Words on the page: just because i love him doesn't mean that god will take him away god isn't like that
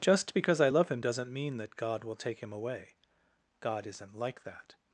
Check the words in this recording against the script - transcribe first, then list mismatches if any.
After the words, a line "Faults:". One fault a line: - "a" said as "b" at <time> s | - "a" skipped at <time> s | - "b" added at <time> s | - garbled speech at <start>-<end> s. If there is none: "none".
just because i love him doesn't mean that god will take him away god isn't like that
Faults:
none